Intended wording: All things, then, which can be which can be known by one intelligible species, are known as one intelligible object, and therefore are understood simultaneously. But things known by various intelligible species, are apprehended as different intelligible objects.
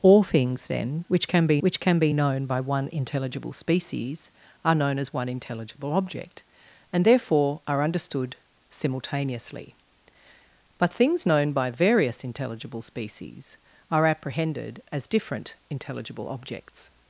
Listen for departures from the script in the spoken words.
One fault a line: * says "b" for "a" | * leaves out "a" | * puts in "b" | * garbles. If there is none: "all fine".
all fine